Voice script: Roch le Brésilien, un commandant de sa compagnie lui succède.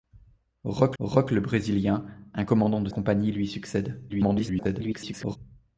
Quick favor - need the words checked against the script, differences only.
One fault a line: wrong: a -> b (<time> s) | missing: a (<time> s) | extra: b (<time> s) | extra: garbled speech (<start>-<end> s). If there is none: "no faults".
extra: roch (1.0 s)
missing: sa (2.9 s)
extra: garbled speech (4.1-5.4 s)